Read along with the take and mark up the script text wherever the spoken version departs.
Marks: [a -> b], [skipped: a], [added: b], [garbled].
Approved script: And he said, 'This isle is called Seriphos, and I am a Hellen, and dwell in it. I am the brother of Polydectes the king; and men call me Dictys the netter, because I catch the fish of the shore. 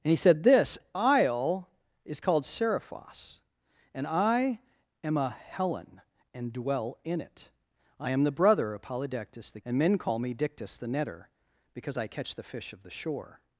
And he said, 'This isle is called Seriphos, and I am a Hellen, and dwell in it. I am the brother of Polydectes the [skipped: king;] and men call me Dictys the netter, because I catch the fish of the shore.